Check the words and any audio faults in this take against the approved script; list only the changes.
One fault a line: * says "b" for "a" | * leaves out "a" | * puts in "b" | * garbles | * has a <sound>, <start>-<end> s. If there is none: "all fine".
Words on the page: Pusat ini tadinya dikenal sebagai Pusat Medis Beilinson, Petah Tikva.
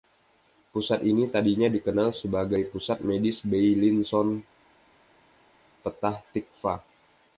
all fine